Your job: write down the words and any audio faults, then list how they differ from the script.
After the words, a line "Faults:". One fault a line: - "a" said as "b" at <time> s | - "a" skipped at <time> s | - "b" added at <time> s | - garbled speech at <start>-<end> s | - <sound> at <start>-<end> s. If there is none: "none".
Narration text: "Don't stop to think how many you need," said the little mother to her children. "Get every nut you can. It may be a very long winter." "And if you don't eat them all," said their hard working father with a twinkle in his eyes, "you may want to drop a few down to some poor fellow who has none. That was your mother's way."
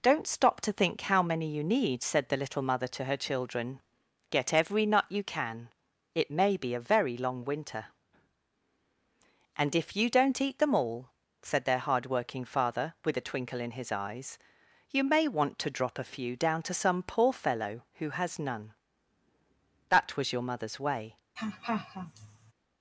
"Don't stop to think how many you need," said the little mother to her children. "Get every nut you can. It may be a very long winter." "And if you don't eat them all," said their hard working father with a twinkle in his eyes, "you may want to drop a few down to some poor fellow who has none. That was your mother's way."
Faults:
- laugh at 21.4-22.5 s